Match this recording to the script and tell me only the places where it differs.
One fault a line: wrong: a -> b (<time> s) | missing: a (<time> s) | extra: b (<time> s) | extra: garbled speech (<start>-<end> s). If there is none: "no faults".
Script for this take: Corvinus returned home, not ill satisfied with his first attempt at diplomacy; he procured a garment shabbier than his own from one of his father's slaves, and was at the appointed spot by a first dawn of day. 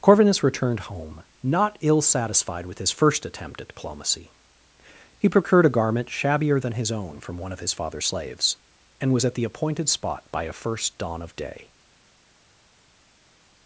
no faults